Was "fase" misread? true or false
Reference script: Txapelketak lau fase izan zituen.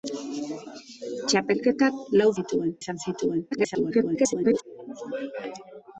true